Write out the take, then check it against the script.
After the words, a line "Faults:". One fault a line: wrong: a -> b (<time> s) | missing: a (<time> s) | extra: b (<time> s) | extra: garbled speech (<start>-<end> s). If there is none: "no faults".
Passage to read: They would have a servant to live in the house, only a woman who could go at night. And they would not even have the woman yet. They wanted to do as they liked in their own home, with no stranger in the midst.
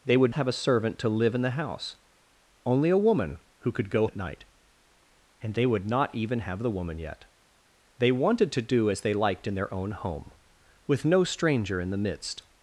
They would have a servant to live in the house, only a woman who could go at night. And they would not even have the woman yet. They wanted to do as they liked in their own home, with no stranger in the midst.
Faults:
no faults